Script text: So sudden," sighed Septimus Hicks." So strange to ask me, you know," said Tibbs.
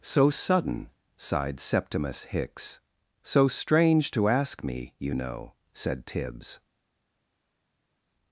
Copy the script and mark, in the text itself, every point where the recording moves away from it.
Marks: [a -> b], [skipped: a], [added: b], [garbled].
So sudden," sighed Septimus Hicks." So strange to ask me, you know," said Tibbs.